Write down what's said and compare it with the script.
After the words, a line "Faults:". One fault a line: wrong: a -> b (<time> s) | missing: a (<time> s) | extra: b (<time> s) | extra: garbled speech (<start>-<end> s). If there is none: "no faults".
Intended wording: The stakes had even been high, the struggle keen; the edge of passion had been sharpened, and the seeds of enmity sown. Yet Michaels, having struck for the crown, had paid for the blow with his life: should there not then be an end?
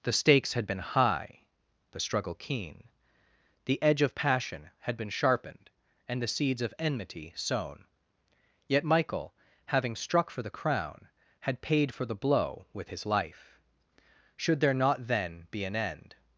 The stakes had been high, the struggle keen; the edge of passion had been sharpened, and the seeds of enmity sown. Yet Michael, having struck for the crown, had paid for the blow with his life: should there not then be an end?
Faults:
missing: even (0.7 s)
wrong: Michaels -> Michael (8.8 s)